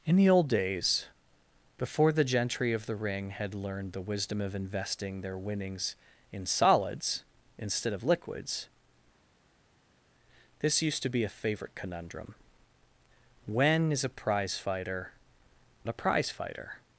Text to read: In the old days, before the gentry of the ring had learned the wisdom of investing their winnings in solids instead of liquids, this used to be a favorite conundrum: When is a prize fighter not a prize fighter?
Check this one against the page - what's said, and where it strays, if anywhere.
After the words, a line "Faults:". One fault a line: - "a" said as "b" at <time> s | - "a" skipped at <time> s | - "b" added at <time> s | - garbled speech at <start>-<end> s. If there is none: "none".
In the old days, before the gentry of the ring had learned the wisdom of investing their winnings in solids instead of liquids, this used to be a favorite conundrum: When is a prize fighter a prize fighter?
Faults:
- "not" skipped at 15.1 s